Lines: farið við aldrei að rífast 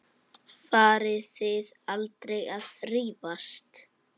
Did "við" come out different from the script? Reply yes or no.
yes